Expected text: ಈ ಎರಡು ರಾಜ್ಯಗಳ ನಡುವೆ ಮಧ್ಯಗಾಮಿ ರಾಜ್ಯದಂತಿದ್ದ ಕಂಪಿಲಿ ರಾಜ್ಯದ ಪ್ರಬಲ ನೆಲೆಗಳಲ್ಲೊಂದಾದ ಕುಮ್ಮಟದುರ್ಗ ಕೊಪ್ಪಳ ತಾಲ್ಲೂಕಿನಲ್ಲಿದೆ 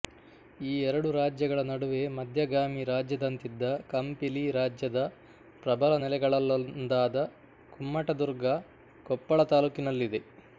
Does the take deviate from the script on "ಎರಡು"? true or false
false